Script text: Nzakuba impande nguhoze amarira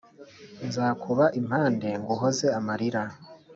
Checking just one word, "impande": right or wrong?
right